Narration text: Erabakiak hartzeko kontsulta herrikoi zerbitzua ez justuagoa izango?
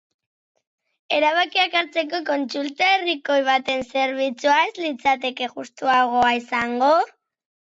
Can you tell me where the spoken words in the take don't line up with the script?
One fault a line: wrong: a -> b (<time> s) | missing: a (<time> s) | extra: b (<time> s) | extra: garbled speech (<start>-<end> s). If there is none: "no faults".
extra: baten (3.5 s)
extra: litzateke (4.9 s)